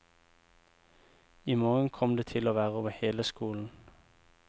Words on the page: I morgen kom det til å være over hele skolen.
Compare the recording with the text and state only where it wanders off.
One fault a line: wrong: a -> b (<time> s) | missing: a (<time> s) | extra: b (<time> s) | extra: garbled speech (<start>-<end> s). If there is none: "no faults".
no faults